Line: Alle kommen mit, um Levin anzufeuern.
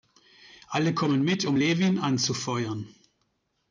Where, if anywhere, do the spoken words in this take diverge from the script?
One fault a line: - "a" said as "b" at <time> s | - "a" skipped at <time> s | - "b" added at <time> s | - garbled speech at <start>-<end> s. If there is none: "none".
none